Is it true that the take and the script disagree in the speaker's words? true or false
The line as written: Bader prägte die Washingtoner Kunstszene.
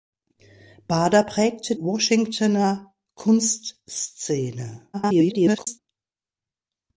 true